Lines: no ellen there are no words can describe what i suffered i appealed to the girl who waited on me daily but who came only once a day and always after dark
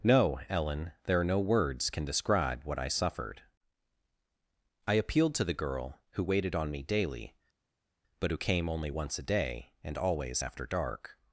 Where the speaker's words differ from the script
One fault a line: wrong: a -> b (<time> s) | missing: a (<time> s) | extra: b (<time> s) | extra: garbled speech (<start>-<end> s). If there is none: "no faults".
no faults